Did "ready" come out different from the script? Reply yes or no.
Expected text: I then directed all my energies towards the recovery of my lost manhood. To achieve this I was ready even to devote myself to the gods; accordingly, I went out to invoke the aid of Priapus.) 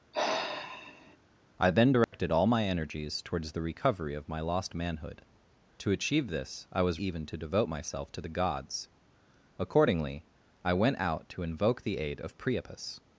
yes